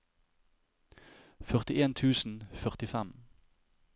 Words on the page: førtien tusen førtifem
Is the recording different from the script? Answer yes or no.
no